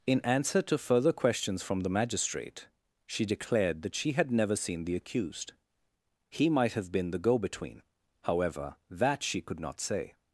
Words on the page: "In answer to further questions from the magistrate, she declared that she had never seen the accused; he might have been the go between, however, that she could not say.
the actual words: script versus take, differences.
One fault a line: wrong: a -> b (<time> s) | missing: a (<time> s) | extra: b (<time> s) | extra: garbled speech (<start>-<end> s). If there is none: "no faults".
no faults